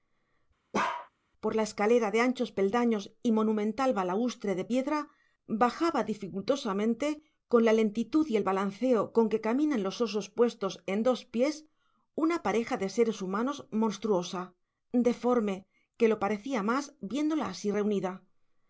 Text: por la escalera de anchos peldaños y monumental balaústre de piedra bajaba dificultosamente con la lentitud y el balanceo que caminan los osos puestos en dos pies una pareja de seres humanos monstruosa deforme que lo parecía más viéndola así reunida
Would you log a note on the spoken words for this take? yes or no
yes